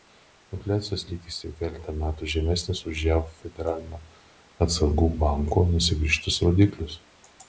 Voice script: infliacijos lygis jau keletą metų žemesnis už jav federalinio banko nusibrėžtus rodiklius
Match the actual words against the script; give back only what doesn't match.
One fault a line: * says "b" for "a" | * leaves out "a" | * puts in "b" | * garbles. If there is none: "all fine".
* puts in "atsargų"